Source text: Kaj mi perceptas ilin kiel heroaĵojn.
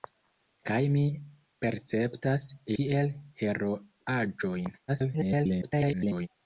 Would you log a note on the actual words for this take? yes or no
yes